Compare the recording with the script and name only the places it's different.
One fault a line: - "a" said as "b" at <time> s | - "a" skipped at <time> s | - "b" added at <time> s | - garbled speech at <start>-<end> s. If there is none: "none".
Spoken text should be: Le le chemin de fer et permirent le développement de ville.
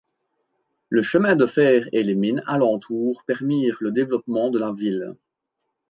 - "le" skipped at 1.0 s
- "les mines alentour" added at 2.0 s
- "la" added at 4.6 s